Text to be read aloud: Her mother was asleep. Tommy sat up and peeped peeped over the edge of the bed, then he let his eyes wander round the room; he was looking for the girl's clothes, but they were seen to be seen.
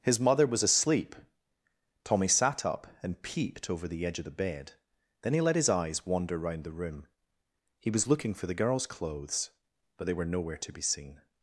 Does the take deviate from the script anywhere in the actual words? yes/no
yes